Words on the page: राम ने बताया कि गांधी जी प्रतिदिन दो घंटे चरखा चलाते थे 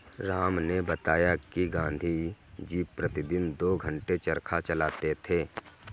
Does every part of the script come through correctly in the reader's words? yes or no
yes